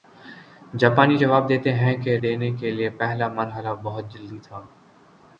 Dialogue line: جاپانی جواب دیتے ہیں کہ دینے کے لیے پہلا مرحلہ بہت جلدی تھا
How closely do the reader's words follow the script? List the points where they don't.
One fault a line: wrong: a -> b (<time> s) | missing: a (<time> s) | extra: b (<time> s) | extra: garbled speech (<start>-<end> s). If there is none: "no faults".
no faults